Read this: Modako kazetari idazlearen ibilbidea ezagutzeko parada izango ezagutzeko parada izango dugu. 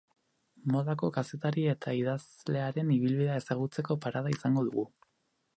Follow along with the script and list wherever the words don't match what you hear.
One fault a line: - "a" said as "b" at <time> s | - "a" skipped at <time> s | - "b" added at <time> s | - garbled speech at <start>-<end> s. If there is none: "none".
- "eta" added at 1.8 s
- "ezagutzeko parada izango" skipped at 4.7 s